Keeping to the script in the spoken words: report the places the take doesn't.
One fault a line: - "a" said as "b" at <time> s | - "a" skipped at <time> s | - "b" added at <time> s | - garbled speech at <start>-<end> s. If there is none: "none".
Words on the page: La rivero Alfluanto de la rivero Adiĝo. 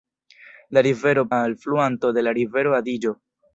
none